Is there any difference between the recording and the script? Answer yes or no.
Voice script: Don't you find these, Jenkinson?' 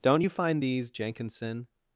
no